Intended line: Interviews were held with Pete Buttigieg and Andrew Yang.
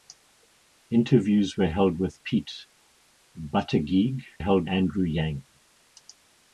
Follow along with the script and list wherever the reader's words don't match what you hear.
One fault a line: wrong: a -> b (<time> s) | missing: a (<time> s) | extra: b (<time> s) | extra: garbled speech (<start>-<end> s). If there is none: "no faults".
wrong: and -> held (4.4 s)